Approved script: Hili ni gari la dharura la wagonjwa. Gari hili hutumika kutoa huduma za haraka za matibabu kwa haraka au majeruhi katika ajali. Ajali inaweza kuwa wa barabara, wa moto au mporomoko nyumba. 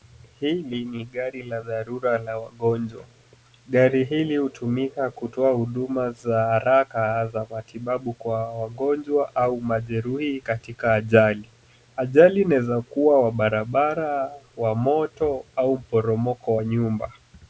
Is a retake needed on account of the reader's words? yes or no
yes